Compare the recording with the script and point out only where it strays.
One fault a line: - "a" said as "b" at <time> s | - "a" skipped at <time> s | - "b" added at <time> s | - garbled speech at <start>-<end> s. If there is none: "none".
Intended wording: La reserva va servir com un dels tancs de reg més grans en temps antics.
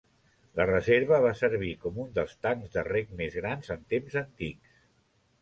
none